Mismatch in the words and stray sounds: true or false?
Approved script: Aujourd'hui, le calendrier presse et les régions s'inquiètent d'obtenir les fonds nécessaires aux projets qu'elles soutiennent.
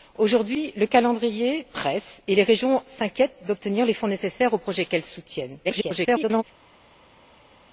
true